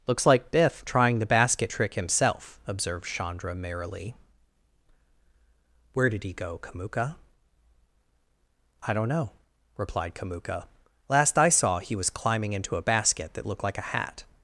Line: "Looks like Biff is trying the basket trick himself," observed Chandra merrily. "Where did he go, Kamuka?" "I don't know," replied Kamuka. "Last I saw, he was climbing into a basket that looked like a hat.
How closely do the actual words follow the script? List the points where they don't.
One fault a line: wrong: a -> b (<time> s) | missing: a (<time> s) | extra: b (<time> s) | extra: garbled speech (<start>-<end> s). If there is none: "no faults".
missing: is (0.8 s)